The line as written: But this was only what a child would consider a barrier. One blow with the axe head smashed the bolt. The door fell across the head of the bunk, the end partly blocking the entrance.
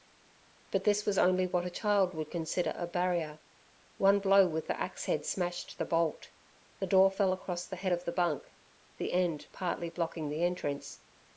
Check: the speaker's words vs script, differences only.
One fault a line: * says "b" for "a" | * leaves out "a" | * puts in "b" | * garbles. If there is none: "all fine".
all fine